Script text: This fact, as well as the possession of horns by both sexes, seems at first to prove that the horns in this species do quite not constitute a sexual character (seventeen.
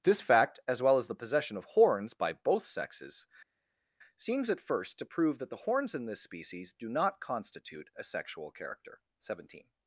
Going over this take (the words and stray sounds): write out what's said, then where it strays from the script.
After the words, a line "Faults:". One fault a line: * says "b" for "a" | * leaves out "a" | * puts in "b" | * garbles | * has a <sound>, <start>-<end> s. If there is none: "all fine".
This fact, as well as the possession of horns by both sexes, seems at first to prove that the horns in this species do not constitute a sexual character (seventeen.
Faults:
* leaves out "quite"